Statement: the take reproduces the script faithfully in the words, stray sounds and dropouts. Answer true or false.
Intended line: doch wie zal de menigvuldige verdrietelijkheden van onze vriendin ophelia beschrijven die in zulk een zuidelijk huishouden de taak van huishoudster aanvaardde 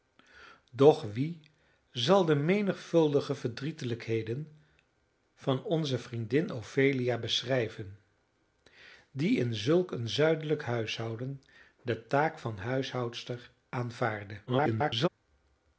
false